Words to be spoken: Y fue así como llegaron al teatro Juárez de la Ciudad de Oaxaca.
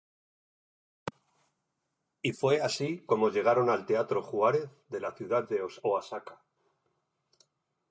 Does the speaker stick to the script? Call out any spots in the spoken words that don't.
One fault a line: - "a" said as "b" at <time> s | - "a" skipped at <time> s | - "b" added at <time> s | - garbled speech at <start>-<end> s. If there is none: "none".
none